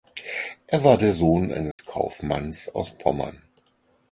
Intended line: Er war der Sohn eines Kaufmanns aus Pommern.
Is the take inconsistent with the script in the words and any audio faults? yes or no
yes